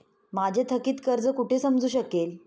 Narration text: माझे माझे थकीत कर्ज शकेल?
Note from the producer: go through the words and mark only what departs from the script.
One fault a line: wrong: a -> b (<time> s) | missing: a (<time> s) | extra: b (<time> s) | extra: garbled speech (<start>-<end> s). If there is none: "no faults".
missing: माझे (0.6 s)
extra: कुठे समजू (1.3 s)